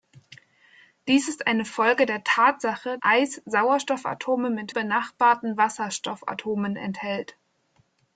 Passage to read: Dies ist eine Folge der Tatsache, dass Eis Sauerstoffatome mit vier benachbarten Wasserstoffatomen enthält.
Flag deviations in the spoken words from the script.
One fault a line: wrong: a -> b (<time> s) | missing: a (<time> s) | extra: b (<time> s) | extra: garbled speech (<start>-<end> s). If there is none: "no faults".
missing: dass (3.0 s)
missing: vier (4.7 s)